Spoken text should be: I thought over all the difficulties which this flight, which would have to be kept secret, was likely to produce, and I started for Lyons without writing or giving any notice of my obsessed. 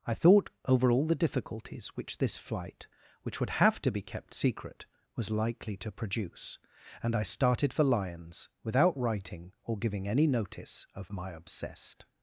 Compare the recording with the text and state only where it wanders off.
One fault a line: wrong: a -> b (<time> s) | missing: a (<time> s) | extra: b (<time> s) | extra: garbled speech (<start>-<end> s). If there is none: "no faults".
no faults